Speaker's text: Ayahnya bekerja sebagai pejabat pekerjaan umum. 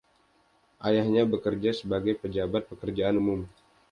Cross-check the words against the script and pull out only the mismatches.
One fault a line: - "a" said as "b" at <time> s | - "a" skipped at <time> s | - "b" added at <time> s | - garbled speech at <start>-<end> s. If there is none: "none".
none